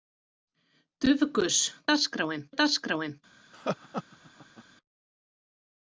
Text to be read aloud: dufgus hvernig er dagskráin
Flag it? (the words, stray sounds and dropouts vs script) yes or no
yes